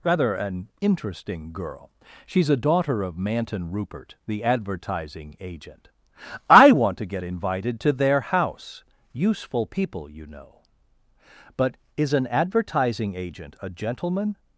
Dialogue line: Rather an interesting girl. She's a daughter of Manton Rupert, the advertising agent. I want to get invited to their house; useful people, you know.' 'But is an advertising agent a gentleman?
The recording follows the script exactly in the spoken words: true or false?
true